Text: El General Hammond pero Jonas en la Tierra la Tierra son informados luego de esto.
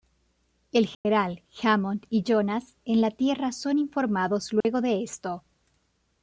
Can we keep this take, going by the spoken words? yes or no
no